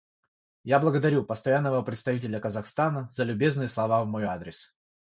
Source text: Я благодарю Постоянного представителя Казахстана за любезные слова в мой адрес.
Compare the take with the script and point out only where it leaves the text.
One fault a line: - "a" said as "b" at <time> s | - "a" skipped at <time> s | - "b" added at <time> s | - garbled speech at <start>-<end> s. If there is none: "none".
none